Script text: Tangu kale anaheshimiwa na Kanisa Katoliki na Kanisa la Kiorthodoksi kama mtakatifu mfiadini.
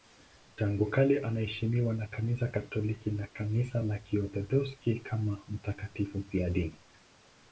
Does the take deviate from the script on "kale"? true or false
false